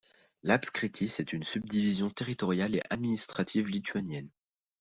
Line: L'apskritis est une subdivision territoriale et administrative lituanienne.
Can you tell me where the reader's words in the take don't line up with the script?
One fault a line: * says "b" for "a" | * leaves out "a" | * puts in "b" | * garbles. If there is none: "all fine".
all fine